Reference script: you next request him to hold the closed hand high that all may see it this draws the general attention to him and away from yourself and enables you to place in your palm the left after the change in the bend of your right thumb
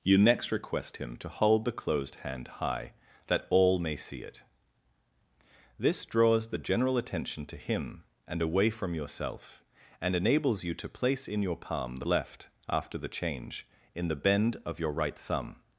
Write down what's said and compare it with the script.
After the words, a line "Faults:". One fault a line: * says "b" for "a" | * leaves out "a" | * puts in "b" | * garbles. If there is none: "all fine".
you next request him to hold the closed hand high that all may see it this draws the general attention to him and away from yourself and enables you to place in your palm the left after the change in the bend of your right thumb
Faults:
all fine